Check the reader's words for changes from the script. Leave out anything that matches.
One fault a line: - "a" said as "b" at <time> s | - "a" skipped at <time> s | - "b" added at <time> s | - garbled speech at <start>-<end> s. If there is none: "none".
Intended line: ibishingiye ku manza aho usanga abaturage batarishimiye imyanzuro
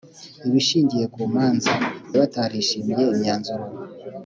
- "aho usanga abaturage" skipped at 1.7 s